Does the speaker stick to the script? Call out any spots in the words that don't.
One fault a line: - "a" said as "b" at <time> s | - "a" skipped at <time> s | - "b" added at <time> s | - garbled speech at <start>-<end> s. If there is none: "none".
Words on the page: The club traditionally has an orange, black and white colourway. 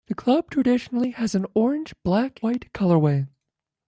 - "and" skipped at 2.4 s